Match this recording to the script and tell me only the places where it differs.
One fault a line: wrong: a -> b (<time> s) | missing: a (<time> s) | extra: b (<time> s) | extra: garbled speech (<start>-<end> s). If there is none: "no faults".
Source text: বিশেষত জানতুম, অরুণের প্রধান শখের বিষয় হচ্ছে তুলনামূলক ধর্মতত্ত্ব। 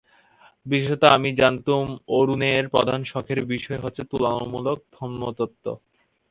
extra: আমি (1.1 s)